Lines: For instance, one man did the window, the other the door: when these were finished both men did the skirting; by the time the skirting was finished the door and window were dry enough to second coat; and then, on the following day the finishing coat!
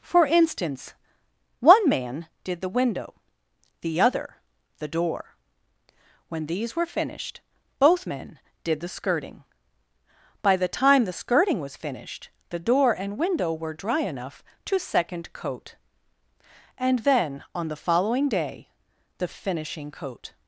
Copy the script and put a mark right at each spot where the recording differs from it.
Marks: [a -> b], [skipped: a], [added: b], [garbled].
For instance, one man did the window, the other the door: when these were finished both men did the skirting; by the time the skirting was finished the door and window were dry enough to second coat; and then, on the following day the finishing coat!